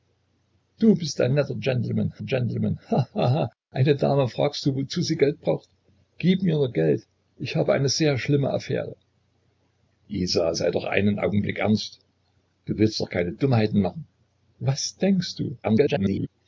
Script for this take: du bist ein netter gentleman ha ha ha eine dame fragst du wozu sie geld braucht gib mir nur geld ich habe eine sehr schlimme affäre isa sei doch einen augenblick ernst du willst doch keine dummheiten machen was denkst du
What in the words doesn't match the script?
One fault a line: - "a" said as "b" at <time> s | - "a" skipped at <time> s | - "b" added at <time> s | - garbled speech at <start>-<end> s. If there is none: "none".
- "gentleman" added at 2.2 s
- garbled speech at 15.6-16.3 s